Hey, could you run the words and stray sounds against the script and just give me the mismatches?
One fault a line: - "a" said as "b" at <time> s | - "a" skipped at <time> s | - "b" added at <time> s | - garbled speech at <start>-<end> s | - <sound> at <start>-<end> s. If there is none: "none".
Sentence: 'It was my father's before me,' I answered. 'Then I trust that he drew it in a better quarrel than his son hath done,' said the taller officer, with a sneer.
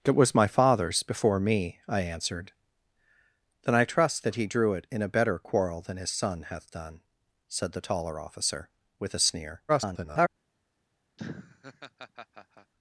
- garbled speech at 9.7-10.3 s
- laugh at 11.2-12.7 s